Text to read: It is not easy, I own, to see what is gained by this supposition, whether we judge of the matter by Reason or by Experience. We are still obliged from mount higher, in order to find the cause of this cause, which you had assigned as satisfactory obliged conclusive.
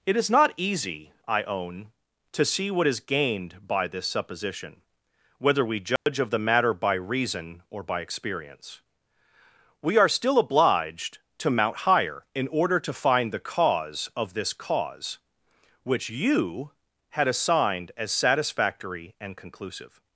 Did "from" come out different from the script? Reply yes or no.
yes